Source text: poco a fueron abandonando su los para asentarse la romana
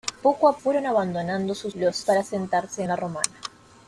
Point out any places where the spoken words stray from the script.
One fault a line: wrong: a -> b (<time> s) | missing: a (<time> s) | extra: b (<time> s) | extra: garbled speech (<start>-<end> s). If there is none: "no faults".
no faults